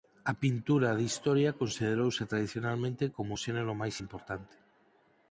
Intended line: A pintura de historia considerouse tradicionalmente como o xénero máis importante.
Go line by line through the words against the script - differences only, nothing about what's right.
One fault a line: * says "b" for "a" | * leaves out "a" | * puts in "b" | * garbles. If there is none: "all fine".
all fine